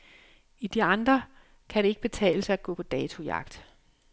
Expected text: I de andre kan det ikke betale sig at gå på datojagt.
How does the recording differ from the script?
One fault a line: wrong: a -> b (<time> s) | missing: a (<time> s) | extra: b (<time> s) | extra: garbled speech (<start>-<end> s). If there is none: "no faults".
no faults